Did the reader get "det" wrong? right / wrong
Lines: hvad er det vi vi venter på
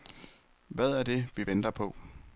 right